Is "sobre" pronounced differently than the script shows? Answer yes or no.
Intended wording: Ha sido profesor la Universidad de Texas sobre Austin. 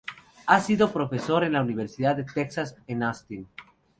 yes